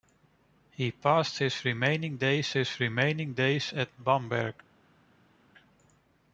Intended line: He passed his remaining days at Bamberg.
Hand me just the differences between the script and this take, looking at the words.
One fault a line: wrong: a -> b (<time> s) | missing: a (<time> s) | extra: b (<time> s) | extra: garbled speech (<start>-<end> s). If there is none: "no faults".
extra: his remaining days (2.5 s)